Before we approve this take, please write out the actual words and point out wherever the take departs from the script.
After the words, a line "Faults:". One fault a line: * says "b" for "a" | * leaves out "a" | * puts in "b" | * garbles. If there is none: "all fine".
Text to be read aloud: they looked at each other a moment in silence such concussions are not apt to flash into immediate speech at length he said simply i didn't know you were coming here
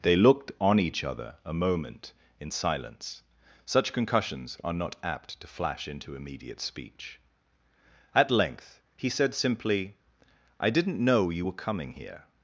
they looked on each other a moment in silence such concussions are not apt to flash into immediate speech at length he said simply i didn't know you were coming here
Faults:
* says "on" for "at"